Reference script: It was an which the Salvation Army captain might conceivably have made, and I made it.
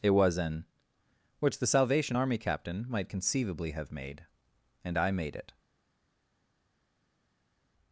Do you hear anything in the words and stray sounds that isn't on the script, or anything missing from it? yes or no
no